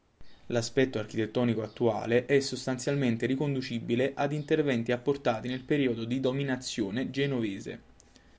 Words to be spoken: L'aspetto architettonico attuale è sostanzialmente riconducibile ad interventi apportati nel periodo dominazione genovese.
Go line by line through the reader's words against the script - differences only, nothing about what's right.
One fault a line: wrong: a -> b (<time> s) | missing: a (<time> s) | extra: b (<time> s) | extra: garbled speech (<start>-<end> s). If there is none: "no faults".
extra: di (6.0 s)